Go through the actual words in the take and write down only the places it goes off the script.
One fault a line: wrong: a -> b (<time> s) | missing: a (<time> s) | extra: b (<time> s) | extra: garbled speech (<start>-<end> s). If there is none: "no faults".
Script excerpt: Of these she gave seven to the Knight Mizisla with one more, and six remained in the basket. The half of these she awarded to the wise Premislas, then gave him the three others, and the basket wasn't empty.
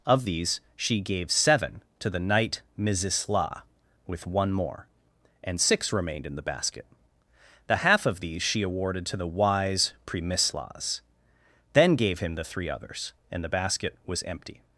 wrong: wasn't -> was (14.1 s)